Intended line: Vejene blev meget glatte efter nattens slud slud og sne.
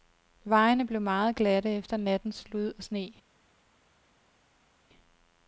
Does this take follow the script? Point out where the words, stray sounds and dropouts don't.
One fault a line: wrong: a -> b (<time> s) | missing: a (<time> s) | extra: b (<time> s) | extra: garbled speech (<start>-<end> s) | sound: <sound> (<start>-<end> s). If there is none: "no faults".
missing: slud (2.7 s)